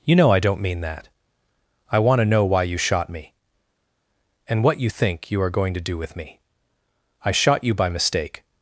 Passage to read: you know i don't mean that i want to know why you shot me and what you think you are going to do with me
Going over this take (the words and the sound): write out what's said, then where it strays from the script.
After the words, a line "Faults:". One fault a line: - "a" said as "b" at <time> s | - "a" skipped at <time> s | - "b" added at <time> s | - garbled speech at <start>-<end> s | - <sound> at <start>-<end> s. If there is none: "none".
you know i don't mean that i want to know why you shot me and what you think you are going to do with me i shot you by mistake
Faults:
- "i shot you by mistake" added at 7.3 s